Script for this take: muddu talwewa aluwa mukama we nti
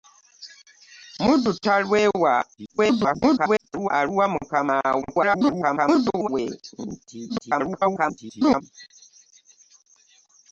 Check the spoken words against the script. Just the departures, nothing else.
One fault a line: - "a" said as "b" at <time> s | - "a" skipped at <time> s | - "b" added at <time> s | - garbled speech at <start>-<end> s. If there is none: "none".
- garbled speech at 2.6-3.9 s
- garbled speech at 5.0-6.3 s
- garbled speech at 7.3-8.6 s